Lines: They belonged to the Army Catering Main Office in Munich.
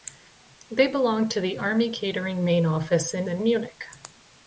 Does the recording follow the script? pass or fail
fail